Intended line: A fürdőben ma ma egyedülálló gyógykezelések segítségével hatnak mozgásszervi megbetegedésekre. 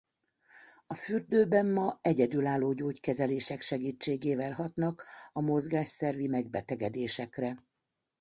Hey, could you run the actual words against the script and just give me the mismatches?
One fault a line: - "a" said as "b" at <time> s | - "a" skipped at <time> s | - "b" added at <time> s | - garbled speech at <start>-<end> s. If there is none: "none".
- "ma" skipped at 2.0 s
- "a" added at 5.3 s